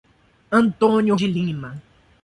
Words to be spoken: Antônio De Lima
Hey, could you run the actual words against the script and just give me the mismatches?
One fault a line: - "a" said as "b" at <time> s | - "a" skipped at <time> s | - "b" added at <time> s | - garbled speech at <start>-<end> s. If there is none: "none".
none